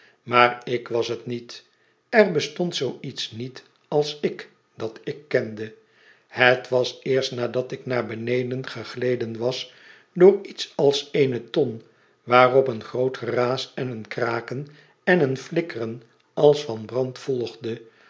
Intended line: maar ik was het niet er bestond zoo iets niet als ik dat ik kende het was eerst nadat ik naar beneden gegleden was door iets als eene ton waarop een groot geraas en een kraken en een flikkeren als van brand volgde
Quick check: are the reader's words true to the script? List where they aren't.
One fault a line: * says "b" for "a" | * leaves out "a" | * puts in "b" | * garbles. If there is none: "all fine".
all fine